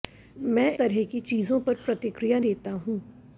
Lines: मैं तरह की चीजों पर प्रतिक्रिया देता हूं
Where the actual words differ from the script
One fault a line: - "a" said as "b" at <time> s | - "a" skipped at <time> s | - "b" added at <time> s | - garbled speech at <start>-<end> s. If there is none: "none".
none